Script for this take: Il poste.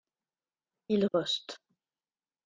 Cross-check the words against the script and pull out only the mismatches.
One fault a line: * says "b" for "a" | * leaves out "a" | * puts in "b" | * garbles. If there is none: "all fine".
all fine